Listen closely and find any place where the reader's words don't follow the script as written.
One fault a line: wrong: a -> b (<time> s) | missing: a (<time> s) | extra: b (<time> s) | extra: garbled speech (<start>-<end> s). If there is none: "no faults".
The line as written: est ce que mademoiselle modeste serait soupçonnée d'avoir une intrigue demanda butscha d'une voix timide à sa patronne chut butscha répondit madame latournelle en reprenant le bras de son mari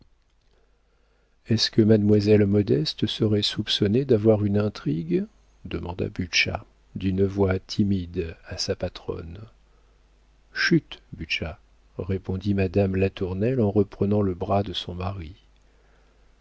no faults